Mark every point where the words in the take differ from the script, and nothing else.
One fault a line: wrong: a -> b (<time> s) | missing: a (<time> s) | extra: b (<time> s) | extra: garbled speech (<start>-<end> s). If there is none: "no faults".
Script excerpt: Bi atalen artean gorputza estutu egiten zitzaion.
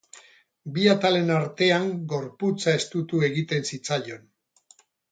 no faults